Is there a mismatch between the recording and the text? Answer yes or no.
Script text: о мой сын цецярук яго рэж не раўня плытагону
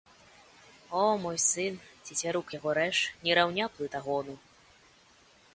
no